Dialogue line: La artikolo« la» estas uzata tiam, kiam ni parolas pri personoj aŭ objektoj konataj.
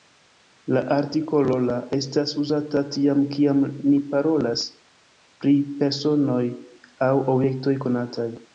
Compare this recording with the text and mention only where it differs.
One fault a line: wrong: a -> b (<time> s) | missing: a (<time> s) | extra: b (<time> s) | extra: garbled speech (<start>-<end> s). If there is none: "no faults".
no faults